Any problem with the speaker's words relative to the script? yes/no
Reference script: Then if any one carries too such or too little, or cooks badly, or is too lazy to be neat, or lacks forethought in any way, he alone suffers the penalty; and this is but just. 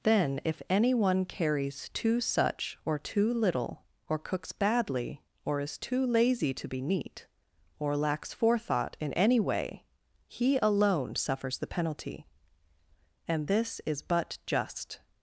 no